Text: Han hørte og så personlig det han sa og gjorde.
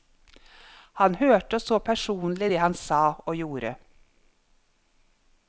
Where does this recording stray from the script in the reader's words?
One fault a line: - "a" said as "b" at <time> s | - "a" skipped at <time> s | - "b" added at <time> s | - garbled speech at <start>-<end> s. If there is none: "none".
none